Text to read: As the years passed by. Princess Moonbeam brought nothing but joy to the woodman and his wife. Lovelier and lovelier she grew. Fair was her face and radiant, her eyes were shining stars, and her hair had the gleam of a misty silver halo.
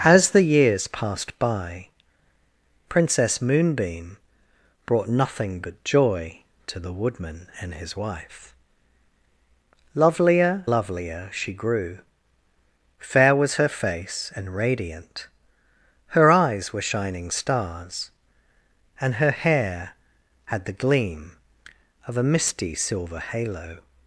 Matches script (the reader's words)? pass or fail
fail